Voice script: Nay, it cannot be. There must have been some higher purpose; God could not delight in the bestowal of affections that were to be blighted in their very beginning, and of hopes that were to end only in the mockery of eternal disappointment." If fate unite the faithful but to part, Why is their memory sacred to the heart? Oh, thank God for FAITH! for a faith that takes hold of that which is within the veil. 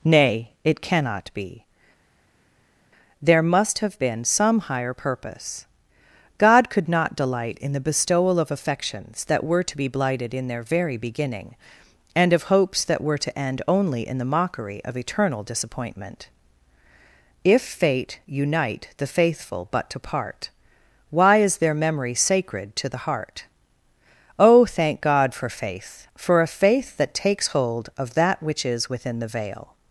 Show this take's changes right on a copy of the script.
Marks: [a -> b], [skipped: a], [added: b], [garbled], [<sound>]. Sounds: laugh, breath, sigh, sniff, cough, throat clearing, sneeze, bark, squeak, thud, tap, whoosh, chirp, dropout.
Nay, it cannot be. There must have been some higher purpose; God could not delight in the bestowal of affections that were to be blighted in their very beginning, and of hopes that were to end only in the mockery of eternal disappointment." If fate unite the faithful but to part, Why is their memory sacred to the heart? Oh, thank God for FAITH! for a faith that takes hold of that which is within the veil.